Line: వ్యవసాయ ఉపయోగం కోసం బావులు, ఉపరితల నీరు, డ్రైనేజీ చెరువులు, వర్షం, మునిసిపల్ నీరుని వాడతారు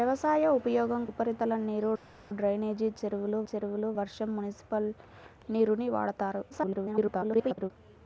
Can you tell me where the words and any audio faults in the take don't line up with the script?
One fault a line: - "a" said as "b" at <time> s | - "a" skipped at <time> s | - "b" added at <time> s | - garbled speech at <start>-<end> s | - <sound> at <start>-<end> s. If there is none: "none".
- "కోసం బావులు" skipped at 1.0 s
- "చెరువులు" added at 3.5 s
- garbled speech at 6.5-7.7 s